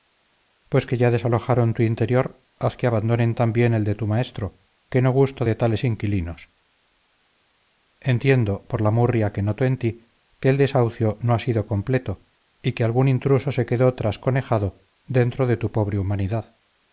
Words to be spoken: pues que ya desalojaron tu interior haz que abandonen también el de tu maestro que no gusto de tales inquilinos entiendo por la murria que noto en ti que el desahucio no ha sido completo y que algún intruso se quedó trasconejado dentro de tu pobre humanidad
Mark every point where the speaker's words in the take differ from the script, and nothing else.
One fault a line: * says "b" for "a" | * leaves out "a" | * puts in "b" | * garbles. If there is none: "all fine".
all fine